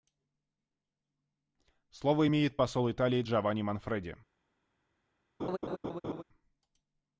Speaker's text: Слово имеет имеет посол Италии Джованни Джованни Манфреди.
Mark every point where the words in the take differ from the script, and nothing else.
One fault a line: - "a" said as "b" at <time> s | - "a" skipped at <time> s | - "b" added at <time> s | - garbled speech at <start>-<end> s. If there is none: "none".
- "имеет" skipped at 2.6 s
- "Джованни" skipped at 3.6 s